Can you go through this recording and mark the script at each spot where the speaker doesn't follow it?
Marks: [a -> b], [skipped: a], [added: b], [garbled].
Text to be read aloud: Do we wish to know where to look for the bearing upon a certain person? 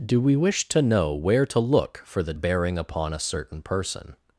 Do we wish to know where to look for the bearing upon a certain person?